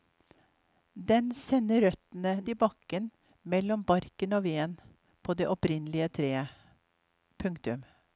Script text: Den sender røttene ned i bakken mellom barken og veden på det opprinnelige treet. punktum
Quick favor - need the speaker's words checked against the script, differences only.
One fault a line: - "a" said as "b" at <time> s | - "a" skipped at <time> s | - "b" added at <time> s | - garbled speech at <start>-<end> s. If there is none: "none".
- "ned" skipped at 2.3 s